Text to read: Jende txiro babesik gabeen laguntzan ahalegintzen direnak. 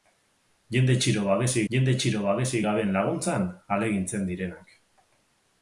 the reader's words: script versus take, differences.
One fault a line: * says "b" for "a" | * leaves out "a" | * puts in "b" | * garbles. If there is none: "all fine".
* puts in "jende txiro babesik"